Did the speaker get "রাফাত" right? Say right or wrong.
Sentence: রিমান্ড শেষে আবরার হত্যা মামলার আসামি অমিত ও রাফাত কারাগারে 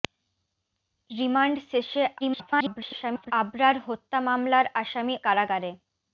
wrong